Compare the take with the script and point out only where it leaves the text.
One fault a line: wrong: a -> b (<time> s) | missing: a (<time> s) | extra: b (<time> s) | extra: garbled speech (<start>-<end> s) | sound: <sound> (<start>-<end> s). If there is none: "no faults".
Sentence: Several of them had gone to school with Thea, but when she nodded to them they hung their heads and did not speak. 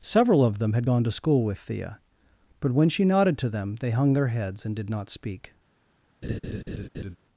sound: laugh (6.2-7.2 s)